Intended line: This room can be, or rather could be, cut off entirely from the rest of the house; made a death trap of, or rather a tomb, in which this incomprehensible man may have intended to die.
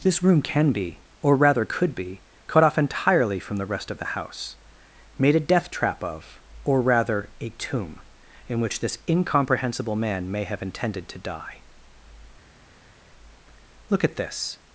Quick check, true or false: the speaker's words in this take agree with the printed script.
false